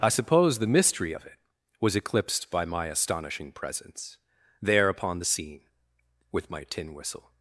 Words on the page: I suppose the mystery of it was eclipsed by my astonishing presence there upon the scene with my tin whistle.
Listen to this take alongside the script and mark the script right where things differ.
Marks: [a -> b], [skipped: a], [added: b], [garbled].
I suppose the mystery of it was eclipsed by my astonishing presence there upon the scene with my tin whistle.